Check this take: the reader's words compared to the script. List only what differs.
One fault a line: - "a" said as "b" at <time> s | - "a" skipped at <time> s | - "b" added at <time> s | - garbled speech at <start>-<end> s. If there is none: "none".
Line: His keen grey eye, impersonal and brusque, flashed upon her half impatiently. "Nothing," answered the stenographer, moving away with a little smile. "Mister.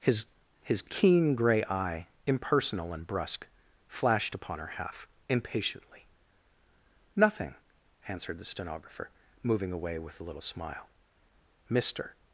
- "his" added at 0.6 s